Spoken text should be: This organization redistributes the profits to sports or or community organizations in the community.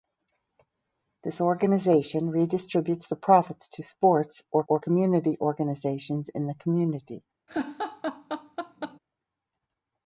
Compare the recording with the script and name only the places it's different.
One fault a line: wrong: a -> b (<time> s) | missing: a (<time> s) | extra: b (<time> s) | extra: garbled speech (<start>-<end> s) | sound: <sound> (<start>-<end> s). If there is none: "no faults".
sound: laugh (7.5-9.0 s)